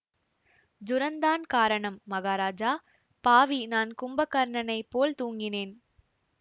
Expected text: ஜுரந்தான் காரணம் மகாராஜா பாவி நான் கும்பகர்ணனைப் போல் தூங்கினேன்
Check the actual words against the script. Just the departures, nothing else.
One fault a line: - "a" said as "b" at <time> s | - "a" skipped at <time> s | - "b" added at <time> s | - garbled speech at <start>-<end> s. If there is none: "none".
none